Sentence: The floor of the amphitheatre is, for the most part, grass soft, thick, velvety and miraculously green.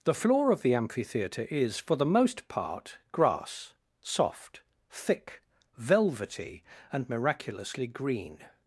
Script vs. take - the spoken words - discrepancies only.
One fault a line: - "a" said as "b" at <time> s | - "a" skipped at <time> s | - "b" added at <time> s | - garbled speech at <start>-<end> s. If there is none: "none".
none